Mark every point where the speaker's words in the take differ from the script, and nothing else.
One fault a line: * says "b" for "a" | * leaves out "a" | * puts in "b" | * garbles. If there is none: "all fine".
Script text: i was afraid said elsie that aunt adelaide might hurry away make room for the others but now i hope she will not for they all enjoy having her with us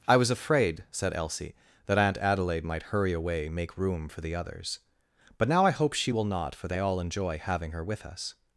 all fine